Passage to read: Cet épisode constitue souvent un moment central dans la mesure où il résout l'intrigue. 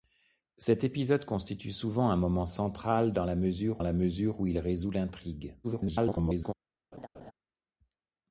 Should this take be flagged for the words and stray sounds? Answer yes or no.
yes